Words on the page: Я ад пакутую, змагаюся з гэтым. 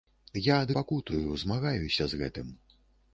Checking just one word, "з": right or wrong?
right